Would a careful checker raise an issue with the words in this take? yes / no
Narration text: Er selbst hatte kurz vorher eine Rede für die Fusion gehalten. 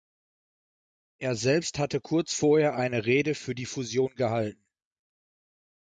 no